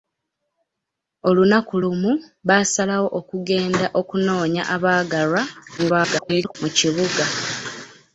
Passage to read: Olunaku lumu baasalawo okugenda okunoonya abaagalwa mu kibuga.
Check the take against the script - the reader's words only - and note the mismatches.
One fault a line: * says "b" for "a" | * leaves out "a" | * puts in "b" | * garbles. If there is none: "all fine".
* garbles